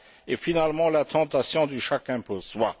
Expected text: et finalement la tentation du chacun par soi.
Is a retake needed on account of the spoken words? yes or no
yes